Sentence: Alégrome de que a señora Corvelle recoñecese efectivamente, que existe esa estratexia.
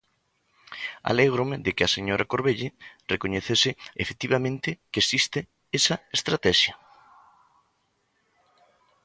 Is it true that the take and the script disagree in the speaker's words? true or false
false